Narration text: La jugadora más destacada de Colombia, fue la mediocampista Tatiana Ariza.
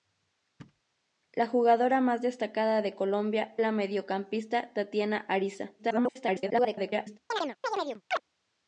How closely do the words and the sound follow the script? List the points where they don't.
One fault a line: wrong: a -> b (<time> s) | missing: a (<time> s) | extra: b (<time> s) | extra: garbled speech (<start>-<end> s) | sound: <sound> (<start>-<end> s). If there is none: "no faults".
sound: thud (0.6-0.8 s)
missing: fue (3.5 s)
extra: garbled speech (5.8-7.2 s)
sound: chirp (7.3-8.2 s)